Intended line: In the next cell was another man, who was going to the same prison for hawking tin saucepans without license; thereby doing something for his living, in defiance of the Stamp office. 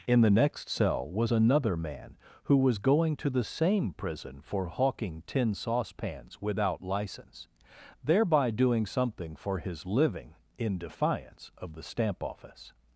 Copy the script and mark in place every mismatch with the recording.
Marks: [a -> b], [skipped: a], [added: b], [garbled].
In the next cell was another man, who was going to the same prison for hawking tin saucepans without license; thereby doing something for his living, in defiance of the Stamp office.